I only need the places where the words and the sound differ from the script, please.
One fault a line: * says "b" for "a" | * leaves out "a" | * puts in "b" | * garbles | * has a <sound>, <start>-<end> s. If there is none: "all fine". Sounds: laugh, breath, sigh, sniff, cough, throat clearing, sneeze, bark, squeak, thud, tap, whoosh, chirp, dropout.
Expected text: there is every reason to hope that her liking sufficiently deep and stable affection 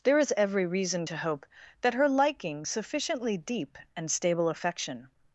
all fine